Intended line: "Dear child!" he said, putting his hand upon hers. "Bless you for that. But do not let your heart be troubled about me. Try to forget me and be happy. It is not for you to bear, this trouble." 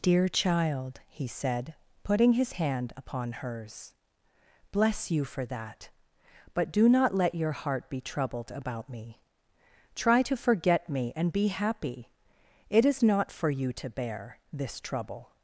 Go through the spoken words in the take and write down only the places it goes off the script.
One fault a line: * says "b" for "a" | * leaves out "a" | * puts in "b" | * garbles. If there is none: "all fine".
all fine